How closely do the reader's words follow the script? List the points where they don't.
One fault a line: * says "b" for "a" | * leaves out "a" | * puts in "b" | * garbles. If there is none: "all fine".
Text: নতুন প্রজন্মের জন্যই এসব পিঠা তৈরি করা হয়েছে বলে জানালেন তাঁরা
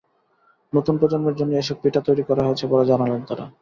all fine